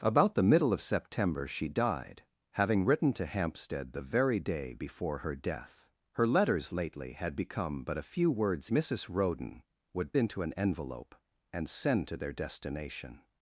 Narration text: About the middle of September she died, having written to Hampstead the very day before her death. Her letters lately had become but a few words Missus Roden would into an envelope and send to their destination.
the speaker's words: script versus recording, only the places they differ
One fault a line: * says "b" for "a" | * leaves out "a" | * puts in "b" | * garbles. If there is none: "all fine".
all fine